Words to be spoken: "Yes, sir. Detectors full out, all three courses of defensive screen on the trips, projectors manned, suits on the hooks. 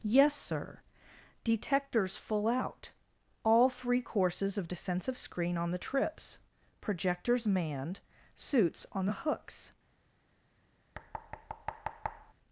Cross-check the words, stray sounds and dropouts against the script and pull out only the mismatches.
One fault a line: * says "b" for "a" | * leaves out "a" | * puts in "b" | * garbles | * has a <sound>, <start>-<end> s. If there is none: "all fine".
* has a thud, 10.9-12.3 s